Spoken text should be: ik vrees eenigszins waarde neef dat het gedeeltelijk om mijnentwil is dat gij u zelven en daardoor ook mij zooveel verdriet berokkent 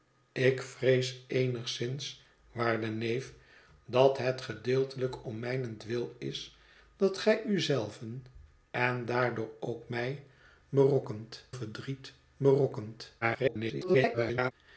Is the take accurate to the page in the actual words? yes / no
no